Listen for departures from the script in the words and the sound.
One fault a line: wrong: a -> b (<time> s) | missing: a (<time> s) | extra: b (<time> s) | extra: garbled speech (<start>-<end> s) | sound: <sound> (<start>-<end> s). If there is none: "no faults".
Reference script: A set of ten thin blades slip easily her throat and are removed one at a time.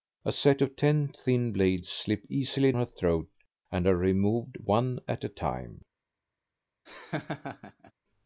sound: laugh (6.9-7.9 s)